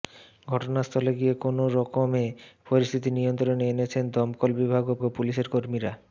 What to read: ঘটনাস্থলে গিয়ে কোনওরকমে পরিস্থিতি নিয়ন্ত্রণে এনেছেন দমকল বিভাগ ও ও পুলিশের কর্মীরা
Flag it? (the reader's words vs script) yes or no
no